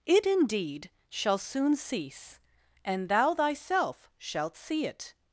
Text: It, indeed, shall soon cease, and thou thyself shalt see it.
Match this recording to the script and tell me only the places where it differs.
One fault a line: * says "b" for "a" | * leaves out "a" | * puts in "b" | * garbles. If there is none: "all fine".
all fine